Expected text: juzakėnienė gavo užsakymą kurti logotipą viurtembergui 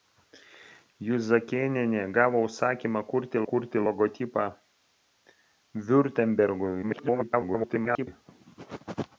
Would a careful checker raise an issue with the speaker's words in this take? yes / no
yes